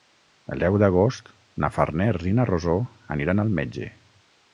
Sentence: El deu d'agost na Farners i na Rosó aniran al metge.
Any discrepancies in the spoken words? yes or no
no